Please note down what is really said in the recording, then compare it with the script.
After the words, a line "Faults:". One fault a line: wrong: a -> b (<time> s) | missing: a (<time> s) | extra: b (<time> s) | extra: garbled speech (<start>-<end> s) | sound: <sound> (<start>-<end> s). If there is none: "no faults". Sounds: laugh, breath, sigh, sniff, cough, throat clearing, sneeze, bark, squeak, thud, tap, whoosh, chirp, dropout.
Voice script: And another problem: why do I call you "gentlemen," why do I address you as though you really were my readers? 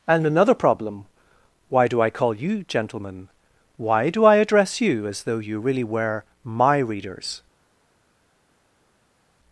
And another problem: why do I call you "gentlemen," why do I address you as though you really were my readers?
Faults:
no faults